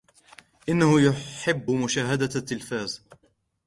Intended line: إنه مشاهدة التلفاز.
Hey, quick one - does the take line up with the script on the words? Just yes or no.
no